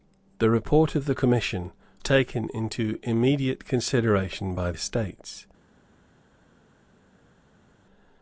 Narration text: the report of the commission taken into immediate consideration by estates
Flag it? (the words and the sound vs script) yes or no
no